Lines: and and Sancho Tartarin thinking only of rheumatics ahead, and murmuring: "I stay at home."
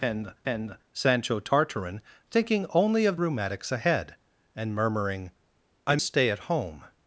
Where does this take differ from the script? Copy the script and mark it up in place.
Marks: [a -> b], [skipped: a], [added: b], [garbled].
and and Sancho Tartarin thinking only of rheumatics ahead, and murmuring: "I stay at home."